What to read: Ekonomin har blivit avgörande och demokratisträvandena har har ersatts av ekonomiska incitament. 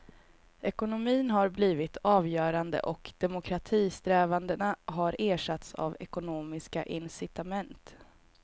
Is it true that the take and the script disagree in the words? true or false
true